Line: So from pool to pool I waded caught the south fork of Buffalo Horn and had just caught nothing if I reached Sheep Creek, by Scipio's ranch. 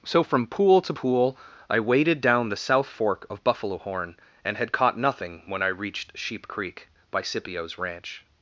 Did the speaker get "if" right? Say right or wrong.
wrong